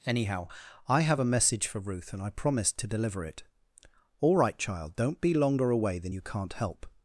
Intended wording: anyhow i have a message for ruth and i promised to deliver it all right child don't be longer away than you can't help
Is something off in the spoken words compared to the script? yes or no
no